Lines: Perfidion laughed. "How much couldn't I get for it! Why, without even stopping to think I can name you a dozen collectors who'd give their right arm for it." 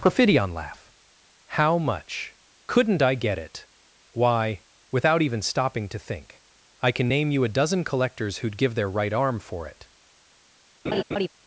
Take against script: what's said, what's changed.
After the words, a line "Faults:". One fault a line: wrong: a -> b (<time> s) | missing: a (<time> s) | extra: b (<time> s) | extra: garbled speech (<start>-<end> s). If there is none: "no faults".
Perfidion laugh. "How much couldn't I get it! Why, without even stopping to think I can name you a dozen collectors who'd give their right arm for it."
Faults:
wrong: laughed -> laugh (0.5 s)
missing: for (3.4 s)